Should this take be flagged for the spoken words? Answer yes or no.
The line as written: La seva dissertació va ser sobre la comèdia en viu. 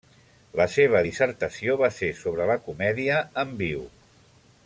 no